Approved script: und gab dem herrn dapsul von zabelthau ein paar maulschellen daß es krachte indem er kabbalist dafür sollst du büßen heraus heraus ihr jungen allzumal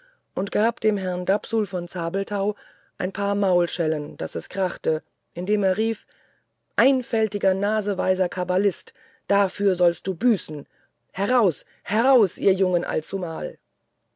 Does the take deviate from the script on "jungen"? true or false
false